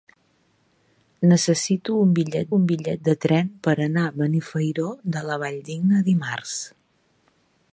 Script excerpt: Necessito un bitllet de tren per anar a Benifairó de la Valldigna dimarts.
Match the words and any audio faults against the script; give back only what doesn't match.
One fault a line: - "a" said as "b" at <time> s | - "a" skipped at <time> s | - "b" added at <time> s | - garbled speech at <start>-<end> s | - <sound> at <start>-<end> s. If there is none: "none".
- "un bitllet" added at 2.6 s